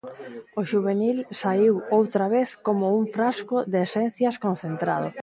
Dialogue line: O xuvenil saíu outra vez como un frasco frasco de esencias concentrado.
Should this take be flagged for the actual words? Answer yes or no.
yes